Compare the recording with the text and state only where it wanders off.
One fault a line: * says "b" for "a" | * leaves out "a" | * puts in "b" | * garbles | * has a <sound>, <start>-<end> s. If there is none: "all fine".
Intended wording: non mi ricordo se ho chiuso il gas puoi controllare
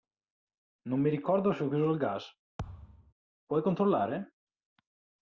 * has a thud, 2.6-3.1 s